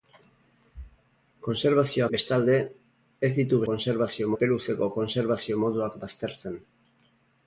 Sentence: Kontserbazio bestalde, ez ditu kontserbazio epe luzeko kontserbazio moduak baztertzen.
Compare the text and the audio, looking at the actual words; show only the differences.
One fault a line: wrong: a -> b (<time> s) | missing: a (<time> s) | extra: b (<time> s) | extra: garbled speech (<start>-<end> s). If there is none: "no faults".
no faults